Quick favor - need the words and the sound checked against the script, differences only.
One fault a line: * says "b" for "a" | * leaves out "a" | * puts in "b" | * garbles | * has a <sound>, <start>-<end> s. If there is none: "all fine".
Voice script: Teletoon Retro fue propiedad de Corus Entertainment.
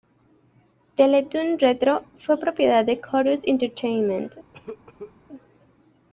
* has a cough, 4.5-5.1 s